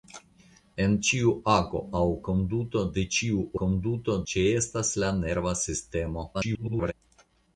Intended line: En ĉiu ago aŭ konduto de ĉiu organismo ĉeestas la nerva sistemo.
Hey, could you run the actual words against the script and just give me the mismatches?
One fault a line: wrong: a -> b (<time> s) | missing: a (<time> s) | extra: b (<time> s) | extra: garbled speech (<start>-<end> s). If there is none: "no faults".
wrong: organismo -> konduto (3.6 s)
extra: garbled speech (6.3-6.9 s)